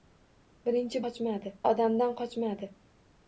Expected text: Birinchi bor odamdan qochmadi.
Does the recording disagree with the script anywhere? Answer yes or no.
yes